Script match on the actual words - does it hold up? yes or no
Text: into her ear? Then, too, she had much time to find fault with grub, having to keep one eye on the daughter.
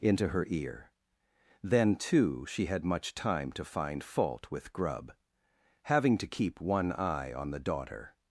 yes